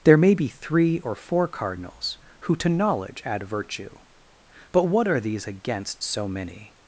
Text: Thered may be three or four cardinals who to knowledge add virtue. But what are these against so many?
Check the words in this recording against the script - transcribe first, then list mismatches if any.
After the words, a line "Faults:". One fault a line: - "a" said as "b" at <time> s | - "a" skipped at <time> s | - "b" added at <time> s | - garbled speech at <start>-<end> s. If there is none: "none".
There may be three or four cardinals who to knowledge add virtue. But what are these against so many?
Faults:
- "Thered" said as "There" at 0.0 s